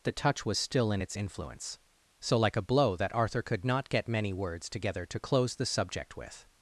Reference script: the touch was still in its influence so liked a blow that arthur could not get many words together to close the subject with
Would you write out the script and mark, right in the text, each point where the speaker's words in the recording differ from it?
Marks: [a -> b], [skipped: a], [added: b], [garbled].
the touch was still in its influence so [liked -> like] a blow that arthur could not get many words together to close the subject with